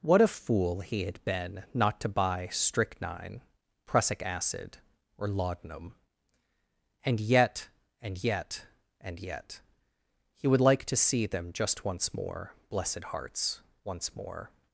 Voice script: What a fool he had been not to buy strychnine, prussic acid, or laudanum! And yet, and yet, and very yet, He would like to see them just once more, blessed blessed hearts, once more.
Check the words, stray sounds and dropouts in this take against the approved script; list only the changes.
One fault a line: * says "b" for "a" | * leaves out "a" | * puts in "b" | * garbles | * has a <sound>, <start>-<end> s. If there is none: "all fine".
* leaves out "very"
* leaves out "blessed"